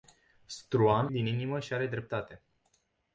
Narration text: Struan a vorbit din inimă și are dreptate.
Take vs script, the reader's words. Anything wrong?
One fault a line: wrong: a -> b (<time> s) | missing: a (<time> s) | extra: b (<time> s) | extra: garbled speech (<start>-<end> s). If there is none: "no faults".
missing: a vorbit (1.1 s)